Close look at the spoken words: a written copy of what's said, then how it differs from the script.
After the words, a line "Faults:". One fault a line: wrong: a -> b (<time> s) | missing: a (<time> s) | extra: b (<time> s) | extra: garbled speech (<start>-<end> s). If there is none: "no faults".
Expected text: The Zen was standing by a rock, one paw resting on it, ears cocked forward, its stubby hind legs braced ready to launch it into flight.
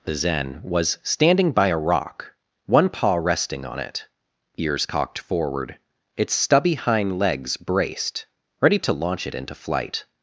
The Zen was standing by a rock, one paw resting on it, ears cocked forward, its stubby hind legs braced ready to launch it into flight.
Faults:
no faults